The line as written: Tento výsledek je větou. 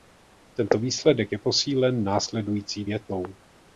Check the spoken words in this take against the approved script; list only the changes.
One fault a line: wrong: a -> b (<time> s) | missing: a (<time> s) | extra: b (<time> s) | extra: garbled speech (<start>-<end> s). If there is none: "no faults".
extra: posílen následující (1.4 s)